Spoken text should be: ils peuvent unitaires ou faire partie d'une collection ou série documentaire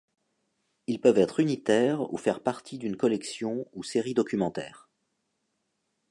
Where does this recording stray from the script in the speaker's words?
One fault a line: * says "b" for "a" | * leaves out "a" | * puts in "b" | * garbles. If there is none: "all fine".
* puts in "être"